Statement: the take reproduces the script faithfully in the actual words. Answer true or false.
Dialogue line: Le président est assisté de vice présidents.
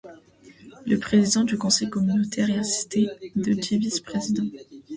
false